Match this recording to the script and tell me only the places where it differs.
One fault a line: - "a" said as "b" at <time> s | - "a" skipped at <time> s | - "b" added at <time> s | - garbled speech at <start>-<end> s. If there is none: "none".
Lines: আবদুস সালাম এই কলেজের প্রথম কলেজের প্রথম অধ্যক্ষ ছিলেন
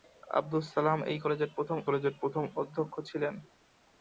none